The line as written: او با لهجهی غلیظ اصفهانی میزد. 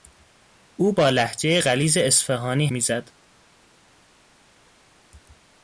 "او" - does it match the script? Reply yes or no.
yes